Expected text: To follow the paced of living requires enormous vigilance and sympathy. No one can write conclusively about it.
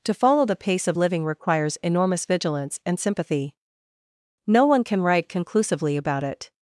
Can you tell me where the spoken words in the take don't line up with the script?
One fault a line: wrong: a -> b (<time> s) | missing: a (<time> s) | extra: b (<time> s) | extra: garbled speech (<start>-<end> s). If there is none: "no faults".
wrong: paced -> pace (0.6 s)